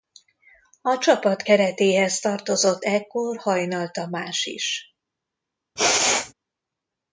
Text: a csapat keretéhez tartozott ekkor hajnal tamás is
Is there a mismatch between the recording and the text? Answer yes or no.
no